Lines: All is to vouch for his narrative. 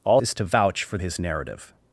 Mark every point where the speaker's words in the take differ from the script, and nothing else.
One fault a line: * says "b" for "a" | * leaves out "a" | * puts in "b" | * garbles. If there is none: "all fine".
all fine